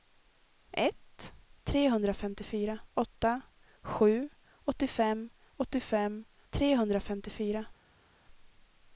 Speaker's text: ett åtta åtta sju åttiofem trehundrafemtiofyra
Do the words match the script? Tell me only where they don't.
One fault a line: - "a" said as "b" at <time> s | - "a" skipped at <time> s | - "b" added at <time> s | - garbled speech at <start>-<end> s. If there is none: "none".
- "åtta" said as "trehundrafemtiofyra" at 1.6 s
- "åttiofem" added at 5.6 s